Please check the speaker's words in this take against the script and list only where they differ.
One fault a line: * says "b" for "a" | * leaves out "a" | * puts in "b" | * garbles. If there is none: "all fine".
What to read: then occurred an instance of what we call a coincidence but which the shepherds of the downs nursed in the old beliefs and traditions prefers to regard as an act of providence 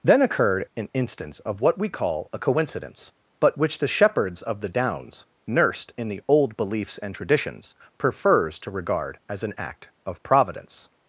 all fine